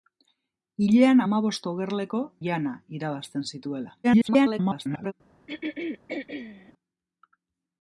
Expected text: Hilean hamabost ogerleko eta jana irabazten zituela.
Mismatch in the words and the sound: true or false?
true